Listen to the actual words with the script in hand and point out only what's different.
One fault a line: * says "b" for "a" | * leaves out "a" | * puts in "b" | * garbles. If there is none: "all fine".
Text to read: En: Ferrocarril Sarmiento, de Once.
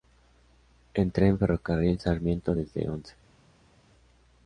* puts in "tren"
* says "desde" for "de"